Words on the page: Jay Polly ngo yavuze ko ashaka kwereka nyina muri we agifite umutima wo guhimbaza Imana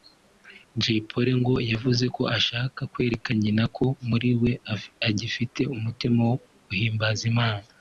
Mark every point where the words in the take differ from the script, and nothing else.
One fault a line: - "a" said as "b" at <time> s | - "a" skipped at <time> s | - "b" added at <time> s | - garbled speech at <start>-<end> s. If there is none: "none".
- "ko" added at 3.8 s